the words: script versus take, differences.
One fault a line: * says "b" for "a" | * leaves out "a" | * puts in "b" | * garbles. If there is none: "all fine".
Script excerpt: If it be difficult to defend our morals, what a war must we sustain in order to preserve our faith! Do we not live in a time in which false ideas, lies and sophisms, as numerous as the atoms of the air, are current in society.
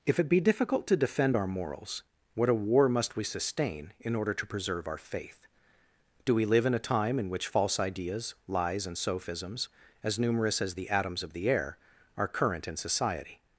* leaves out "not"